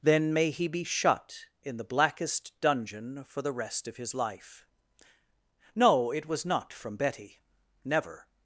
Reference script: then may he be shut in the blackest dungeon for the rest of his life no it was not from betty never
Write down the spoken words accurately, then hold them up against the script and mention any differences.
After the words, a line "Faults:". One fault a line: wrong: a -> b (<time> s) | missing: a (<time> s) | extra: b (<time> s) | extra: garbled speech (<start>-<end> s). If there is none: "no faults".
then may he be shut in the blackest dungeon for the rest of his life no it was not from betty never
Faults:
no faults